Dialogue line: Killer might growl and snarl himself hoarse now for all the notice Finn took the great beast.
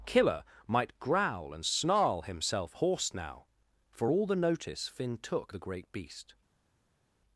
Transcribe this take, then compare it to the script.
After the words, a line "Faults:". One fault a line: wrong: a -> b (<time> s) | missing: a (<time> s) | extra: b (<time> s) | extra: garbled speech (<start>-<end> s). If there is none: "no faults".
Killer might growl and snarl himself hoarse now for all the notice Finn took the great beast.
Faults:
no faults